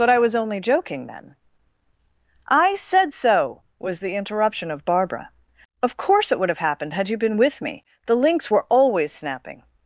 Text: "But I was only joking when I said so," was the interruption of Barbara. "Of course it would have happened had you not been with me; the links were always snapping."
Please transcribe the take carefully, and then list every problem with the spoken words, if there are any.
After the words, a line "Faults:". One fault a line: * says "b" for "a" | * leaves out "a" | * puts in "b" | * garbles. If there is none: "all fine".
"But I was only joking then I said so," was the interruption of Barbara. "Of course it would have happened had you been with me; the links were always snapping."
Faults:
* says "then" for "when"
* leaves out "not"